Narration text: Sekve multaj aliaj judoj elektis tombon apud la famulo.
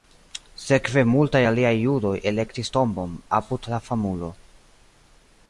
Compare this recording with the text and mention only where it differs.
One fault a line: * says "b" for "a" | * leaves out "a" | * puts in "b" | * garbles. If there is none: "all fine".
all fine